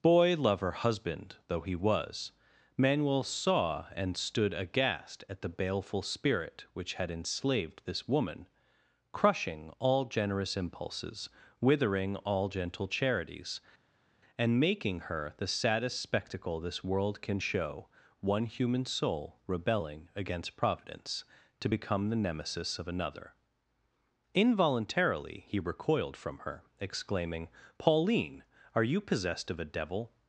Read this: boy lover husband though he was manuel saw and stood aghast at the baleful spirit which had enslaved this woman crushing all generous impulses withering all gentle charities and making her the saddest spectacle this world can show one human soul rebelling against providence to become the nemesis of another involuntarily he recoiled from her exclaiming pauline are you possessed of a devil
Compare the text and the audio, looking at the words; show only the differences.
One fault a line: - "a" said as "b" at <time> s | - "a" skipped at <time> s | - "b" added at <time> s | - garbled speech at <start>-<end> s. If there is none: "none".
none